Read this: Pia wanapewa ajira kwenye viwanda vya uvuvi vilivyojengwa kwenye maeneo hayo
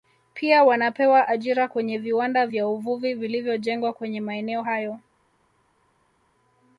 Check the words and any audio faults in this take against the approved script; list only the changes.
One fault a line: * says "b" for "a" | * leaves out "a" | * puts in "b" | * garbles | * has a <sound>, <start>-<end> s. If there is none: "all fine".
all fine